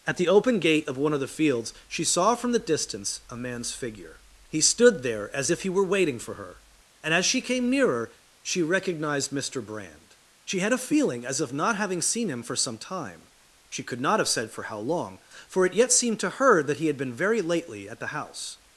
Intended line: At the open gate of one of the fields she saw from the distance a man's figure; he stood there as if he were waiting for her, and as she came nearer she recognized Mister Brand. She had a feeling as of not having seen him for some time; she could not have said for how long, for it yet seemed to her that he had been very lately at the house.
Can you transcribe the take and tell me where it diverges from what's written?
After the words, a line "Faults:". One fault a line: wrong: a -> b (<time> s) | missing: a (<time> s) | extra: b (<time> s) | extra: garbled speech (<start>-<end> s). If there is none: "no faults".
At the open gate of one of the fields she saw from the distance a man's figure; he stood there as if he were waiting for her, and as she came nearer she recognized Mister Brand. She had a feeling as of not having seen him for some time; she could not have said for how long, for it yet seemed to her that he had been very lately at the house.
Faults:
no faults